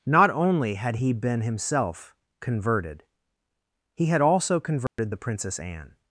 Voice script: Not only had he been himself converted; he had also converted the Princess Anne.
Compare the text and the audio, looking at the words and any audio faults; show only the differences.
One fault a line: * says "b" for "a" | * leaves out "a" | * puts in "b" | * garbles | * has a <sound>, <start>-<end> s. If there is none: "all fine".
* has a dropout, 4.9-5.0 s